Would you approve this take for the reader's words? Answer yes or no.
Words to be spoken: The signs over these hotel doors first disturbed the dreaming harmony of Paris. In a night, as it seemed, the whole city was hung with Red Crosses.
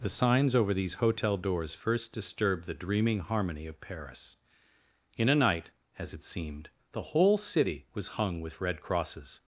yes